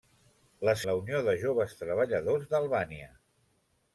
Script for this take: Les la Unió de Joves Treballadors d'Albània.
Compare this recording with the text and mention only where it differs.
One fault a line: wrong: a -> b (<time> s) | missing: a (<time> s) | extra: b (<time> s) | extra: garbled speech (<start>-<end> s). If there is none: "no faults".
no faults